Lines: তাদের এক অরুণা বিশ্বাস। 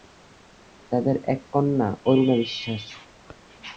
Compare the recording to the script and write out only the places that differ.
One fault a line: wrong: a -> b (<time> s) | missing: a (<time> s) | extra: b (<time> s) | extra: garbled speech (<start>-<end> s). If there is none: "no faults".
extra: কন্যা (1.5 s)